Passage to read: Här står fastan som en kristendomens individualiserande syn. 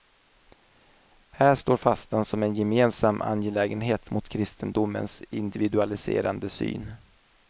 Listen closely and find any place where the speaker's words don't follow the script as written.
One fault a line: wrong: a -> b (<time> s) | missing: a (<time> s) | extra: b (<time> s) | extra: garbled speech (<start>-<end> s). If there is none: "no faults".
extra: gemensam angelägenhet mot (2.5 s)